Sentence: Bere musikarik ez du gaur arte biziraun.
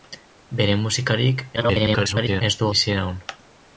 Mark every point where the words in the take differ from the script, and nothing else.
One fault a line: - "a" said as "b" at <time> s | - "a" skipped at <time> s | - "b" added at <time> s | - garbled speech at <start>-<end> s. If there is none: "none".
- garbled speech at 1.6-2.4 s
- "gaur arte" skipped at 2.7 s